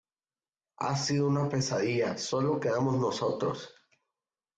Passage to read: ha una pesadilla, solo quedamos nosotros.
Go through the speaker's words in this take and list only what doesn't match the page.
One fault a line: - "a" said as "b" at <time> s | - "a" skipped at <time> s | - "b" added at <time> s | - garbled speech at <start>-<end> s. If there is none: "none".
- "sido" added at 0.9 s